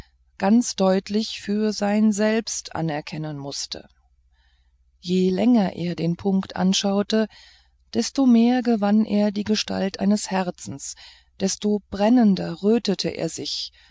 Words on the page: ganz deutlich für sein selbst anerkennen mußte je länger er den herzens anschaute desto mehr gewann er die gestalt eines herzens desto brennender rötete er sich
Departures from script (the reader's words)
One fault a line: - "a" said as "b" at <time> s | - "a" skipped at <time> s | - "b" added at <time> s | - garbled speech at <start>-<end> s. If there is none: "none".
- "herzens" said as "punkt" at 6.2 s